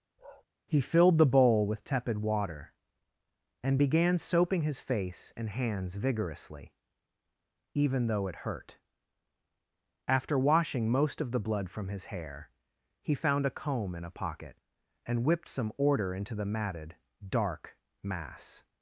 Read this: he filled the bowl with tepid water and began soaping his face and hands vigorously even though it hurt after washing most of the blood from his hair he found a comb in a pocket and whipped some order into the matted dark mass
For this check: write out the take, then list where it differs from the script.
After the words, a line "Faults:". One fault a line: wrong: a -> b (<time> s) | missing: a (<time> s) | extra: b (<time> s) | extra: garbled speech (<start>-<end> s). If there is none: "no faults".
he filled the bowl with tepid water and began soaping his face and hands vigorously even though it hurt after washing most of the blood from his hair he found a comb in a pocket and whipped some order into the matted dark mass
Faults:
no faults